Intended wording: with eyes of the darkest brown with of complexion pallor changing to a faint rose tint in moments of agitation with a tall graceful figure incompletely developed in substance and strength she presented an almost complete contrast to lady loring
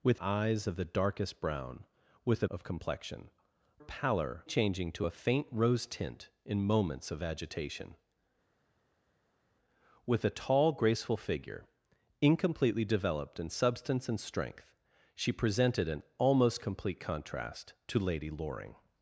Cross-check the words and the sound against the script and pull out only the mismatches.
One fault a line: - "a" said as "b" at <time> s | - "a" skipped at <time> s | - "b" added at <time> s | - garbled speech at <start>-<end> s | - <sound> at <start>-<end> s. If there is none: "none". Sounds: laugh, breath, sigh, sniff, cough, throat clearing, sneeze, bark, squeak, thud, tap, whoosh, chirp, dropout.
none